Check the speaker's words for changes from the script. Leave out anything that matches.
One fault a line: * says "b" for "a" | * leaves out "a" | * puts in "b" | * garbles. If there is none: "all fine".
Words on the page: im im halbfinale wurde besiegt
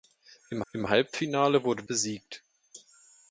all fine